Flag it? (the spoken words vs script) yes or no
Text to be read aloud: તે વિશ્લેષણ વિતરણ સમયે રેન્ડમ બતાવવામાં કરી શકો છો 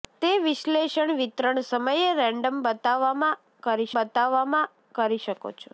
yes